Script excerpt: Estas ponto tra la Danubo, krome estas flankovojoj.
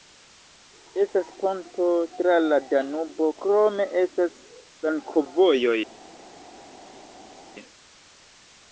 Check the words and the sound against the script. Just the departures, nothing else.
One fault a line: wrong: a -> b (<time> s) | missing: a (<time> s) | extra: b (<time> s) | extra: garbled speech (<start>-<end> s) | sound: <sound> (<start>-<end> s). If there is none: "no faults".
no faults